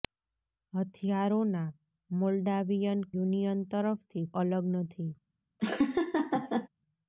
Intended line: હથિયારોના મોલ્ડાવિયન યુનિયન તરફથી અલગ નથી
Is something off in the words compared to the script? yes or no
no